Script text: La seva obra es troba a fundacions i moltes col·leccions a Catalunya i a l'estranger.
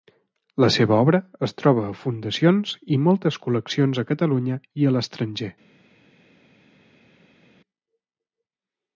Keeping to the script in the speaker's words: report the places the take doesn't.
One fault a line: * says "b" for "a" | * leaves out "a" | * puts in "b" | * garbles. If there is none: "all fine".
all fine